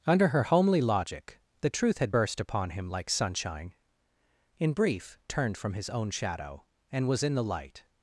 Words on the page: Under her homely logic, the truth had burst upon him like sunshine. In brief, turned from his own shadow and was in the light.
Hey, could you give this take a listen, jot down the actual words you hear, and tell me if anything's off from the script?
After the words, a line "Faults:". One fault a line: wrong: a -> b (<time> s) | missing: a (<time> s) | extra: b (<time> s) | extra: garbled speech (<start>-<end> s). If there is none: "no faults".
Under her homely logic, the truth had burst upon him like sunshine. In brief, turned from his own shadow and was in the light.
Faults:
no faults